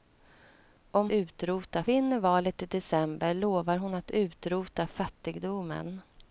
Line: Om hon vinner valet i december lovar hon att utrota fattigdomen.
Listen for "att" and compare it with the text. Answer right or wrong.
right